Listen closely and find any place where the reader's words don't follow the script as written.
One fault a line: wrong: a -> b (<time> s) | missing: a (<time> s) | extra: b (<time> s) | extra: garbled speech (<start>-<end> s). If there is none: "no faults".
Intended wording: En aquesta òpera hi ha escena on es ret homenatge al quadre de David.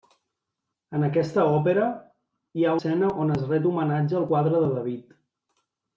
no faults